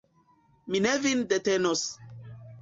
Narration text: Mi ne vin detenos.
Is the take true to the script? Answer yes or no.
yes